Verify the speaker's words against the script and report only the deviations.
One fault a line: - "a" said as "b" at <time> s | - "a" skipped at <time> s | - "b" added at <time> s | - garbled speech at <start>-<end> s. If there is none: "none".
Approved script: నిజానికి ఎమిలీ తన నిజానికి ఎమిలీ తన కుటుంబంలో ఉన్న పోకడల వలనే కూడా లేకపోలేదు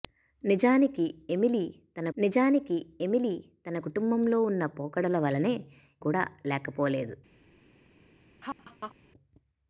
none